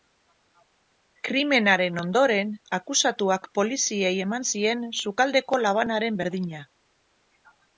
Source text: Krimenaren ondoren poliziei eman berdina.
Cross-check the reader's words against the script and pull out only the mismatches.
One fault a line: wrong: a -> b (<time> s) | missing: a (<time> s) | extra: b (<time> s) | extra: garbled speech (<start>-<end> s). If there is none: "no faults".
extra: akusatuak (2.8 s)
extra: zien sukaldeko labanaren (4.5 s)